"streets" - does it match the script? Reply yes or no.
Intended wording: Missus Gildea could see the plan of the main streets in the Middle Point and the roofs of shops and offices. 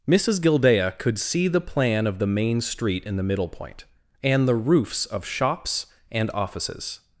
no